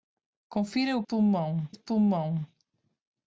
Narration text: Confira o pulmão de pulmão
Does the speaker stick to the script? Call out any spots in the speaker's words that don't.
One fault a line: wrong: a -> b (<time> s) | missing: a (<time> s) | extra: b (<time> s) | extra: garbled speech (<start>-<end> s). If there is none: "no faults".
no faults